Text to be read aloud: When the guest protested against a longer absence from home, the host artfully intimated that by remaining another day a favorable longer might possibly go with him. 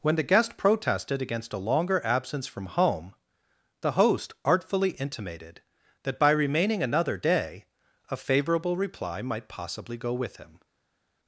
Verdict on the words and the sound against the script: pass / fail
fail